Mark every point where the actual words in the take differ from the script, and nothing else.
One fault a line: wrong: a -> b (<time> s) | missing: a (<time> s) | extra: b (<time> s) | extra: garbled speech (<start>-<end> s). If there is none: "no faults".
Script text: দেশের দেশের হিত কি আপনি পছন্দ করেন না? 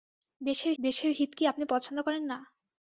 no faults